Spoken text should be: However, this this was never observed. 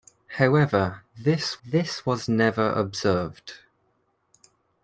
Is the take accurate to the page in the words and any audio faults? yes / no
yes